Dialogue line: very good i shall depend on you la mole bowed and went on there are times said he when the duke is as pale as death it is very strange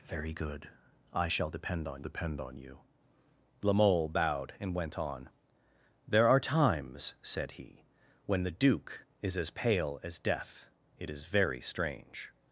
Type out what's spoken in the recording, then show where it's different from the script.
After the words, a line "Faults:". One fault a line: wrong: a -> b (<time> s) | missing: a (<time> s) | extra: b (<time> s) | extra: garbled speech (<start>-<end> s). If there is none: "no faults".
very good i shall depend on depend on you la mole bowed and went on there are times said he when the duke is as pale as death it is very strange
Faults:
extra: depend on (2.0 s)